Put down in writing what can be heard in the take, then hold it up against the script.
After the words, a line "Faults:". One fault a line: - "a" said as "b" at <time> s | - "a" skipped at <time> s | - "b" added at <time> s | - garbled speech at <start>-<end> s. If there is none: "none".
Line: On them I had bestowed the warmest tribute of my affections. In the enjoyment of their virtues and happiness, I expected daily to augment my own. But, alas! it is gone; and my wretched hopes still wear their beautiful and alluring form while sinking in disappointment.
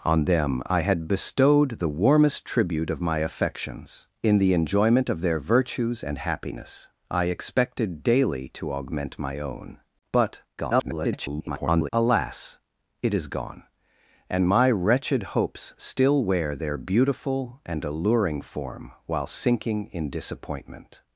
On them I had bestowed the warmest tribute of my affections. In the enjoyment of their virtues and happiness, I expected daily to augment my own. But, [garbled] alas! it is gone; and my wretched hopes still wear their beautiful and alluring form while sinking in disappointment.
Faults:
- garbled speech at 10.6-11.9 s